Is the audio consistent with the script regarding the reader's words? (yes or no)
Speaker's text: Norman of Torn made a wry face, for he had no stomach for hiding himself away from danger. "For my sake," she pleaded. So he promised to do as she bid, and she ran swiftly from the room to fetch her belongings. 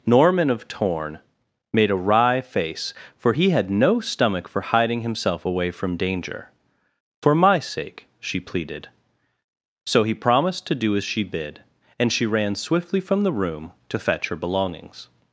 yes